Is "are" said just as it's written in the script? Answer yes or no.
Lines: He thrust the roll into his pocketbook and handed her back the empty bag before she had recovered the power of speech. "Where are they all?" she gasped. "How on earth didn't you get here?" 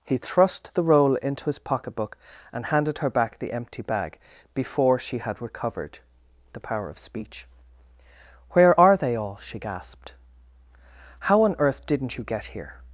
yes